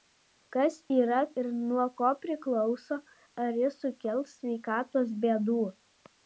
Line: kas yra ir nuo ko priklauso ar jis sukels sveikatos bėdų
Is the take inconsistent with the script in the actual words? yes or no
no